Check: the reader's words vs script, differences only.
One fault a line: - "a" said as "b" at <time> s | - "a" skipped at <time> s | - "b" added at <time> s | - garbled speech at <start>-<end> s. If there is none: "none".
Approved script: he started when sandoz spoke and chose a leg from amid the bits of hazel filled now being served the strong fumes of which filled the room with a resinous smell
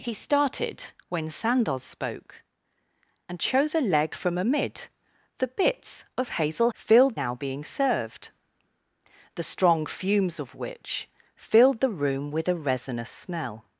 none